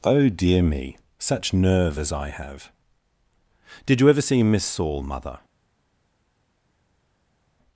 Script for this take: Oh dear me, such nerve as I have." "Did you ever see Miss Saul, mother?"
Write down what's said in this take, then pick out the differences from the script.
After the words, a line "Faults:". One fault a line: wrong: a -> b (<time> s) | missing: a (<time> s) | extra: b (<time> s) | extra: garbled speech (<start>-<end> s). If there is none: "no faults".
Oh dear me, such nerve as I have." "Did you ever see Miss Saul, mother?"
Faults:
no faults